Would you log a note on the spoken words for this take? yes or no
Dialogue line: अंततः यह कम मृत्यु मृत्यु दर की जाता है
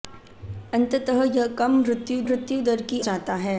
no